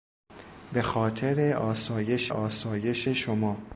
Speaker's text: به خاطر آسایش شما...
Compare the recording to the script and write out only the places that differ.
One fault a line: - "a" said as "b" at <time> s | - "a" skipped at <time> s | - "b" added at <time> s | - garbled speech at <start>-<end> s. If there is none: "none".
- "آسایش" added at 2.3 s